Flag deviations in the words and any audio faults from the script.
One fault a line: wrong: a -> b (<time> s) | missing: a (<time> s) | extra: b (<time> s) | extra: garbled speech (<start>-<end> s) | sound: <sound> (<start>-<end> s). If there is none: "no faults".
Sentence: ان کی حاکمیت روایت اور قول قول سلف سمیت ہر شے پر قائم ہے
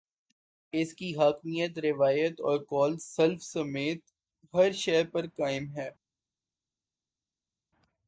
wrong: ان -> اس (0.7 s)
missing: قول (3.0 s)